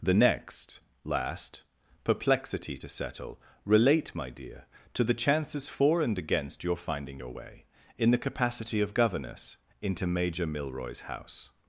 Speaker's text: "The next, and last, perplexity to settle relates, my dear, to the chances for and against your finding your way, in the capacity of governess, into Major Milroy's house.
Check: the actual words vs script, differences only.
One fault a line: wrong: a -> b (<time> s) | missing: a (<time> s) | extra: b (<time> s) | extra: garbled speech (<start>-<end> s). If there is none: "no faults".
missing: and (0.8 s)
wrong: relates -> relate (3.6 s)